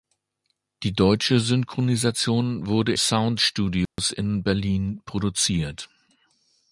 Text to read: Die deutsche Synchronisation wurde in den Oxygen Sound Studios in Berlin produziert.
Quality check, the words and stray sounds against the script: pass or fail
fail